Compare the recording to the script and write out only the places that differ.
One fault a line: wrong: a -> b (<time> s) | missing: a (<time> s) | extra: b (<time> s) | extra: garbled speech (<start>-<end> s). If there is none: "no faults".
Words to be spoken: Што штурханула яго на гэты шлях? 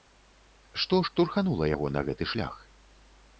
no faults